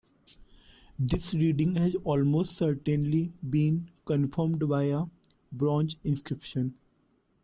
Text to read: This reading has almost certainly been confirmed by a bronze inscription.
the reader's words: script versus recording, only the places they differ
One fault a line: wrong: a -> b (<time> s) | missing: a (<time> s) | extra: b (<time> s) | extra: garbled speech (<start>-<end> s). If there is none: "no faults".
no faults